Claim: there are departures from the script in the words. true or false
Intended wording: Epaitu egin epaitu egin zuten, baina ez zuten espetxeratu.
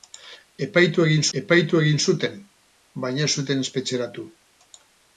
false